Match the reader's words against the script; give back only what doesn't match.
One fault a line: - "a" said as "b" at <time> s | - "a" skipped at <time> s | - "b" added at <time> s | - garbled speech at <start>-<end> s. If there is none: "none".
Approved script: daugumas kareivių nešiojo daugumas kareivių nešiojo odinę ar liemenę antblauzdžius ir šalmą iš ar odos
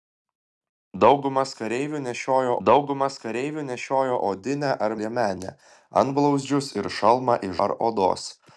none